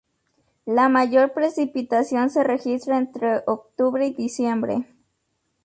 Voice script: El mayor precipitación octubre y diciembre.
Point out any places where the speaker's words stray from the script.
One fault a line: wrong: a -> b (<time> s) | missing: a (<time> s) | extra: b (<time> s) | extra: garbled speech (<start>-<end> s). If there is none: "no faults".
wrong: El -> La (0.7 s)
extra: se registra entre (2.3 s)